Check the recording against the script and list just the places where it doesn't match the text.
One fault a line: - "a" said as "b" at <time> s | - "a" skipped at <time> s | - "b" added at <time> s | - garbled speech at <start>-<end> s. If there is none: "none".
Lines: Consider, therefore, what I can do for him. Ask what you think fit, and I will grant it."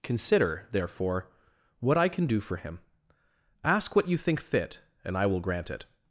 none